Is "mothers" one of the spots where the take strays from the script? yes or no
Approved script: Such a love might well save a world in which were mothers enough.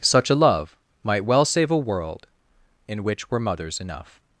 no